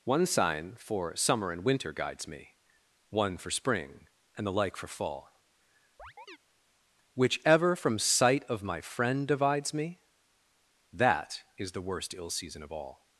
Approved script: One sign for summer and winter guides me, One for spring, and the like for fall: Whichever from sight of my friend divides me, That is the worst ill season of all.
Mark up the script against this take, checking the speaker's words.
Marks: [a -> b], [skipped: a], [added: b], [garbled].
One sign for summer and winter guides me, One for spring, and the like for fall: Whichever from sight of my friend divides me, That is the worst ill season of all.